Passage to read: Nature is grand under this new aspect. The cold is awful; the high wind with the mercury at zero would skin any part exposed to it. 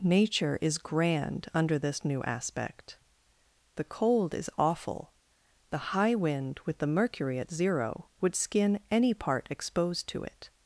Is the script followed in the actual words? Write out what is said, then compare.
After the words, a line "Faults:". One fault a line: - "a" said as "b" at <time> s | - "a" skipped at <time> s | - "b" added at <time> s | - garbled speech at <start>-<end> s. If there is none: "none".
Nature is grand under this new aspect. The cold is awful; the high wind with the mercury at zero would skin any part exposed to it.
Faults:
none